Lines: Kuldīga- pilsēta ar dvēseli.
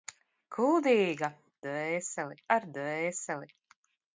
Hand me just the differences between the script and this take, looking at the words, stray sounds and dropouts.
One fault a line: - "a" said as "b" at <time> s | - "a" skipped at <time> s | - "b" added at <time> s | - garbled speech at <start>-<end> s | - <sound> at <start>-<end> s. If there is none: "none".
- "pilsēta" said as "dvēseli" at 1.7 s